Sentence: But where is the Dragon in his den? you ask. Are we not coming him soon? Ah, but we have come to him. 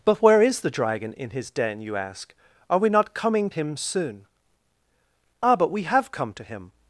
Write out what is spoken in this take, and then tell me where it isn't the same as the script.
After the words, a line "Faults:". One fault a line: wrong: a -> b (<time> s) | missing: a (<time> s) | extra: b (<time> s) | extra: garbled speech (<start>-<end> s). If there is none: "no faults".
But where is the Dragon in his den? you ask. Are we not coming him soon? Ah, but we have come to him.
Faults:
no faults